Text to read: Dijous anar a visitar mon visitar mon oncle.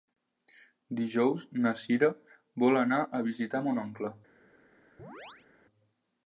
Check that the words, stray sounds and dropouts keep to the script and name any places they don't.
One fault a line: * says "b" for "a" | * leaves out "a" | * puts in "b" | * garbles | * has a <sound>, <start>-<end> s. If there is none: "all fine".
* puts in "na Cira vol"
* leaves out "visitar mon"
* has a chirp, 5.0-5.5 s